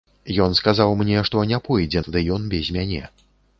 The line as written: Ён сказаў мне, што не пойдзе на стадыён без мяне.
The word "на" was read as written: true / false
false